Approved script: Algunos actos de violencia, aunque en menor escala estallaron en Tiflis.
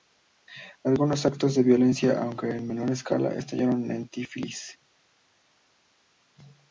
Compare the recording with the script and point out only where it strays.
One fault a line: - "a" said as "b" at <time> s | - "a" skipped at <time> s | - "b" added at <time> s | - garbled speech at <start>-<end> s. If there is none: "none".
none